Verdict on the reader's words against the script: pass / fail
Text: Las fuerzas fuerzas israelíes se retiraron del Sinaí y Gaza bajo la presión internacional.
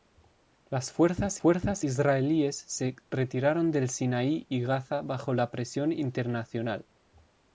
pass